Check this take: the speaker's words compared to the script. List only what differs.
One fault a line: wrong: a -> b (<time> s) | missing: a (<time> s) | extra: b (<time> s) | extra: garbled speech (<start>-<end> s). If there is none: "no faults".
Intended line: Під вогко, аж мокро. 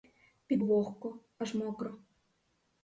no faults